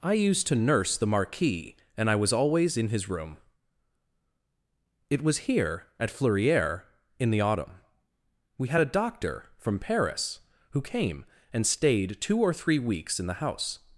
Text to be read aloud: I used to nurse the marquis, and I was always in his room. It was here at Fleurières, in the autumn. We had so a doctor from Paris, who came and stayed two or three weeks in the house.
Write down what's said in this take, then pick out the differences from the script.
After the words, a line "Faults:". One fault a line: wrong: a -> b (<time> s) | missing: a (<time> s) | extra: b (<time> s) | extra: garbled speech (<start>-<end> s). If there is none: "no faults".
I used to nurse the marquis, and I was always in his room. It was here at Fleurières, in the autumn. We had a doctor from Paris, who came and stayed two or three weeks in the house.
Faults:
missing: so (8.8 s)